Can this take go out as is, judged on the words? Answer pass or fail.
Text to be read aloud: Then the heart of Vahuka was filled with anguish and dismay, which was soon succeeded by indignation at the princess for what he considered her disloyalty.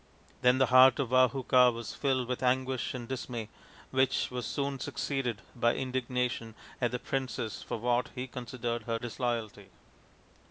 pass